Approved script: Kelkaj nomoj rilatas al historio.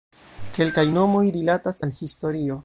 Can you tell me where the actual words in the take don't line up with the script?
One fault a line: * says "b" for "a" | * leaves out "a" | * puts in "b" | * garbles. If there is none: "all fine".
all fine